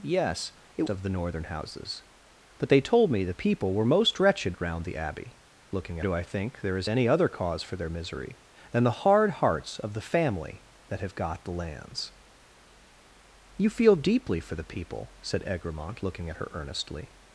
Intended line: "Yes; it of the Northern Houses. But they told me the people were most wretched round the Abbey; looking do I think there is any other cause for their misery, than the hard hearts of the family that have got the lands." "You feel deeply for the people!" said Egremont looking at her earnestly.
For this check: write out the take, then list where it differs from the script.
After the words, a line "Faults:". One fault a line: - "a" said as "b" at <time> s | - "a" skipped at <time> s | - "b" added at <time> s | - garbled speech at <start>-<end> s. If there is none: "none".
"Yes; it of the Northern Houses. But they told me the people were most wretched round the Abbey; looking do I think there is any other cause for their misery, than the hard hearts of the family that have got the lands." "You feel deeply for the people!" said Egremont looking at her earnestly.
Faults:
none